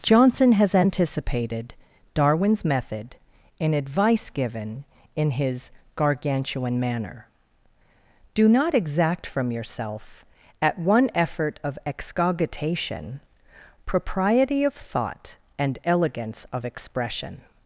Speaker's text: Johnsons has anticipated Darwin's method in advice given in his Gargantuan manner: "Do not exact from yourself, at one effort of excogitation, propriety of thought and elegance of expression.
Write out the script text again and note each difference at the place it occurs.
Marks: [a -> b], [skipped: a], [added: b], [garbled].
[Johnsons -> Johnson] has anticipated Darwin's method in advice given in his Gargantuan manner: "Do not exact from yourself, at one effort of excogitation, propriety of thought and elegance of expression.